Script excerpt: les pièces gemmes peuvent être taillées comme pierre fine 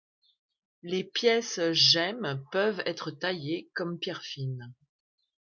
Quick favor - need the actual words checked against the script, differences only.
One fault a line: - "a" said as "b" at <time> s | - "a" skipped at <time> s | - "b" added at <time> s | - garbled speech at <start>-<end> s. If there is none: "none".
none